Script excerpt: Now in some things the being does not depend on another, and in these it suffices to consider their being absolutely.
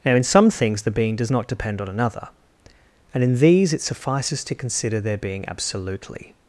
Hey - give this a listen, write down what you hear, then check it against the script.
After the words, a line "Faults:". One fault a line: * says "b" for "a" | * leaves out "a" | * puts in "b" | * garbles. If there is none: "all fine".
Now in some things the being does not depend on another, and in these it suffices to consider their being absolutely.
Faults:
all fine